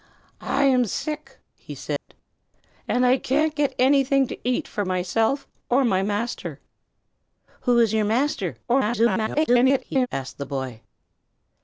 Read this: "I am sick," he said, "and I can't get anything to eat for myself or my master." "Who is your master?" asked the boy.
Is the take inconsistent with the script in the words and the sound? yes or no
yes